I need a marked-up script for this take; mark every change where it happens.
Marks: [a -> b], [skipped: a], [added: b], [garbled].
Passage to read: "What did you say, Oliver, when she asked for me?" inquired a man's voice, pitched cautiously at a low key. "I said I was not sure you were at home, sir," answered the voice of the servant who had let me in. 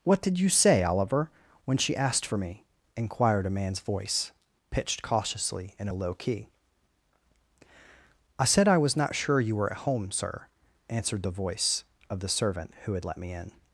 "What did you say, Oliver, when she asked for me?" inquired a man's voice, pitched cautiously [at -> in] a low key. "I said I was not sure you were at home, sir," answered the voice of the servant who had let me in.